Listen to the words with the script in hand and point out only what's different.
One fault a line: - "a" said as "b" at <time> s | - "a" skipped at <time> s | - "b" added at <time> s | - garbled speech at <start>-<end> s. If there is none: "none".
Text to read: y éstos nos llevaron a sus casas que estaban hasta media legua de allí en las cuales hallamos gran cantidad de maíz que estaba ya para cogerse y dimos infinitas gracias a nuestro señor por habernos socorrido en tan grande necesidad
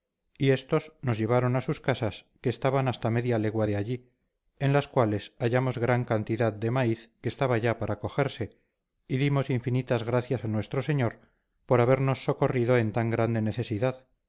none